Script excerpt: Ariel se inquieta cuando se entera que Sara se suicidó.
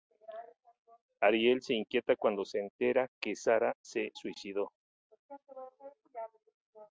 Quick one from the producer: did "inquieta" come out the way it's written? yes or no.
yes